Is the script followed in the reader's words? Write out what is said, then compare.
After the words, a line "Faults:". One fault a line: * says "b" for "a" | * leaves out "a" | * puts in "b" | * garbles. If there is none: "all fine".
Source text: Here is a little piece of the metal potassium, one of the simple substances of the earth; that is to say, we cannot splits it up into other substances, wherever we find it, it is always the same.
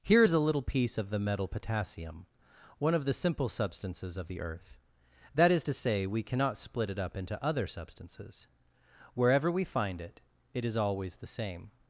Here is a little piece of the metal potassium, one of the simple substances of the earth; that is to say, we cannot split it up into other substances, wherever we find it, it is always the same.
Faults:
* says "split" for "splits"